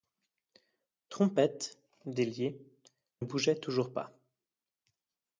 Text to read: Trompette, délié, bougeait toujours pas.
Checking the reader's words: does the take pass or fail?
pass